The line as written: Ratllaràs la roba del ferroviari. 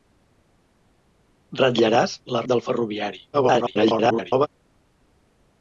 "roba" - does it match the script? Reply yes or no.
no